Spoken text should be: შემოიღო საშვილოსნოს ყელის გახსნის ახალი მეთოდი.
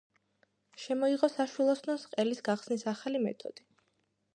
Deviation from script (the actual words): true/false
false